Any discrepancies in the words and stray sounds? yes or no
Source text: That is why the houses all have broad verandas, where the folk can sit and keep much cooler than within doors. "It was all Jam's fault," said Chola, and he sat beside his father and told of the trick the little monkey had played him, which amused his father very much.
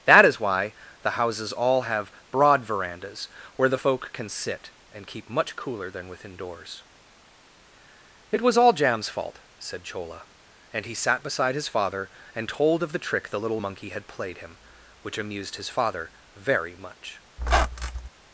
yes